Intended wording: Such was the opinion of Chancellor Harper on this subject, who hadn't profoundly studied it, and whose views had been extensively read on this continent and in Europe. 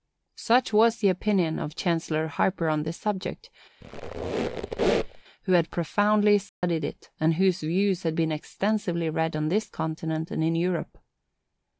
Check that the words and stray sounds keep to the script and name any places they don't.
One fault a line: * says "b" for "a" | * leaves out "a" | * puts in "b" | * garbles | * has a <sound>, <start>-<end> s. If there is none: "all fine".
* has a squeak, 3.8-5.2 s
* says "had" for "hadn't"
* has a dropout, 6.5-6.6 s